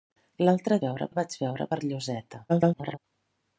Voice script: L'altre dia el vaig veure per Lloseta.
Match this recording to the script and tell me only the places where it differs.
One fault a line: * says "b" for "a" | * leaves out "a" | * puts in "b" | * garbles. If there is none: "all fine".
* says "veure" for "dia"
* garbles